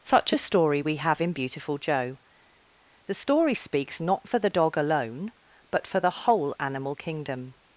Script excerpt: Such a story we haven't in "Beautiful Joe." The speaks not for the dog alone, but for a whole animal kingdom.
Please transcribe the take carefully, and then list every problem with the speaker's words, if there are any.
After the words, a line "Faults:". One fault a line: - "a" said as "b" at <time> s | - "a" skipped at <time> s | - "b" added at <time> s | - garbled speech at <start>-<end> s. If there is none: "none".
Such a story we have in "Beautiful Joe." The story speaks not for the dog alone, but for the whole animal kingdom.
Faults:
- "haven't" said as "have" at 1.0 s
- "story" added at 3.2 s
- "a" said as "the" at 6.0 s